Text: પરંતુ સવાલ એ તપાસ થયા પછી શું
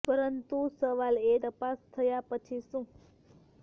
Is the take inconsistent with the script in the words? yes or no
no